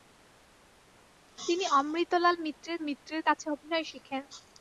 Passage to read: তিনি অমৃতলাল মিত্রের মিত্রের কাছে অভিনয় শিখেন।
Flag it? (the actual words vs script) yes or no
no